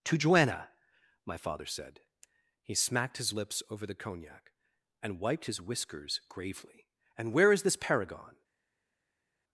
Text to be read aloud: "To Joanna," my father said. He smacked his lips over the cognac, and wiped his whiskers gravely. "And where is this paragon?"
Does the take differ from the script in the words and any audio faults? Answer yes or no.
no